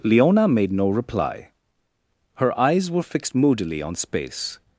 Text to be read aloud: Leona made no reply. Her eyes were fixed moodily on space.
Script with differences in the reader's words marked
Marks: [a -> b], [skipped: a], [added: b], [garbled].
Leona made no reply. Her eyes were fixed moodily on space.